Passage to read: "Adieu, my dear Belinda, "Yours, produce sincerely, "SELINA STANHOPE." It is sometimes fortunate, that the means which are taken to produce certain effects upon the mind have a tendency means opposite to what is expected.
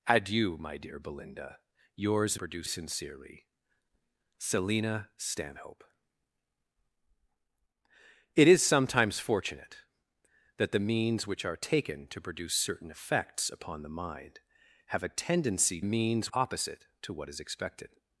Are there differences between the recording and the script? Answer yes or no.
no